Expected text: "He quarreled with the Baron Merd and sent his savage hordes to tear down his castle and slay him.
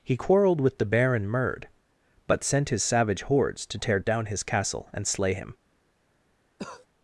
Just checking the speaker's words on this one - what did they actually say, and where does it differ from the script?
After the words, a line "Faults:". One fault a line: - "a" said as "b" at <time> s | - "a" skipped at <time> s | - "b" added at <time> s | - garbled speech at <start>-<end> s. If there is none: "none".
"He quarreled with the Baron Merd but sent his savage hordes to tear down his castle and slay him.
Faults:
- "and" said as "but" at 2.3 s